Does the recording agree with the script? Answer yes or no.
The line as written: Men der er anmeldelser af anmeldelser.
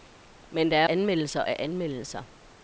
yes